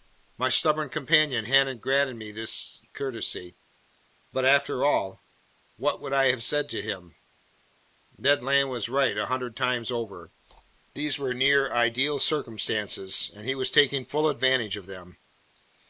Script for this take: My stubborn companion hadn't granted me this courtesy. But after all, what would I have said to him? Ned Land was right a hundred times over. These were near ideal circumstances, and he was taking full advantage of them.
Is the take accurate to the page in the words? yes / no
yes